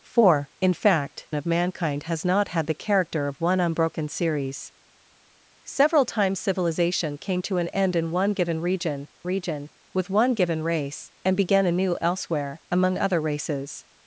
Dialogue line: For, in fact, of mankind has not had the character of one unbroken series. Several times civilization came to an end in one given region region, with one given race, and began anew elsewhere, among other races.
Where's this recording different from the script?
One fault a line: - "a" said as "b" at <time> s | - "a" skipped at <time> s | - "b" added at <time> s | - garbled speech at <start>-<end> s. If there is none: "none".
none